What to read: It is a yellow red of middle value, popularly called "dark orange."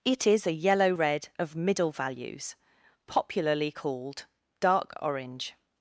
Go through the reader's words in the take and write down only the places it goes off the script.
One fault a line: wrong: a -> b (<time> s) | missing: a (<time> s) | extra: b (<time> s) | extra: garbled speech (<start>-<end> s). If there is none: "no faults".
wrong: value -> values (1.9 s)